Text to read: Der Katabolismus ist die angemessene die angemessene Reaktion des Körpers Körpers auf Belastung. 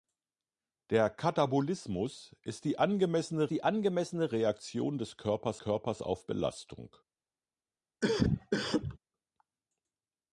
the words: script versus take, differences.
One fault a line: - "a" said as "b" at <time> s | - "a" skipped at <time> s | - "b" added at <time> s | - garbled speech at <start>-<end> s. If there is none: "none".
none